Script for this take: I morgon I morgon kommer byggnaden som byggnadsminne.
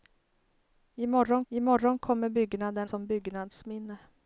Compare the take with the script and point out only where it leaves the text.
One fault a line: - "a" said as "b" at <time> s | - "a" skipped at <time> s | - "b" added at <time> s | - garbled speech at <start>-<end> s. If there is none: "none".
none